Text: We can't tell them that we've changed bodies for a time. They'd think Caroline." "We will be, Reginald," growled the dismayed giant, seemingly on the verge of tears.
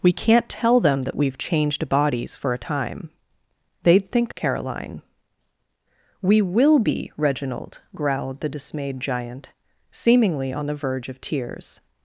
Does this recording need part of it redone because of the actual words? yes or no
no